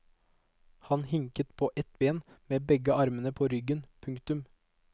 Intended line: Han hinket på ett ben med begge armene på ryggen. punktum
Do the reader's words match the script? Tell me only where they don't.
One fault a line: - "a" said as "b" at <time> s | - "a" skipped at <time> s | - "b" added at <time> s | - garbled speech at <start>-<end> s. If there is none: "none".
none